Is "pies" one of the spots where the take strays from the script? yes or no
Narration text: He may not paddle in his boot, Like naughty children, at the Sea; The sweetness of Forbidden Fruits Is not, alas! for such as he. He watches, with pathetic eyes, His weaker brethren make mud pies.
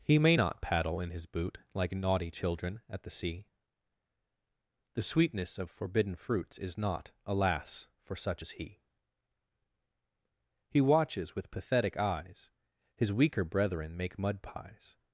no